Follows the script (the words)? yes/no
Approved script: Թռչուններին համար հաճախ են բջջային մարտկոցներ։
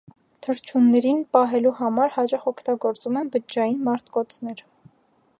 no